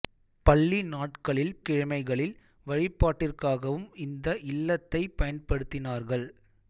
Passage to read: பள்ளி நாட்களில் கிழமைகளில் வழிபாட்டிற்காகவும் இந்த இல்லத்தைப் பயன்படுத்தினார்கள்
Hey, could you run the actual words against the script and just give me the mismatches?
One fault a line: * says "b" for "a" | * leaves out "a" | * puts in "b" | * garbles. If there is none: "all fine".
all fine